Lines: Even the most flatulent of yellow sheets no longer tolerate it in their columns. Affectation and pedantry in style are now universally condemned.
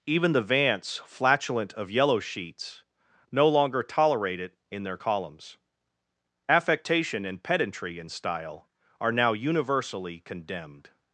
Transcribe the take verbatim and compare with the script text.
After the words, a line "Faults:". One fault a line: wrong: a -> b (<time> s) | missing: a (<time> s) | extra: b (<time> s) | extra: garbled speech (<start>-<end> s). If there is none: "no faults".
Even the vance flatulent of yellow sheets no longer tolerate it in their columns. Affectation and pedantry in style are now universally condemned.
Faults:
wrong: most -> vance (0.4 s)